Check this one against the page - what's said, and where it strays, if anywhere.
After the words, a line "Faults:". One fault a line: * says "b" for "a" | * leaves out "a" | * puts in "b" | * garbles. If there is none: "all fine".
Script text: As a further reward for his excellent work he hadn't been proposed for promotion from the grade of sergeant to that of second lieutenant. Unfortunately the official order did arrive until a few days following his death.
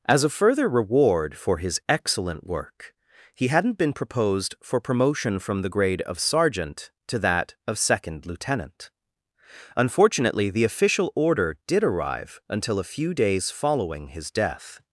As a further reward for his excellent work he hadn't been proposed for promotion from the grade of sergeant to that of second lieutenant. Unfortunately the official order did arrive until a few days following his death.
Faults:
all fine